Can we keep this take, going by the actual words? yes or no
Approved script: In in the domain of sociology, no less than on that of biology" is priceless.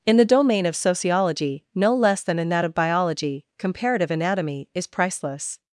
no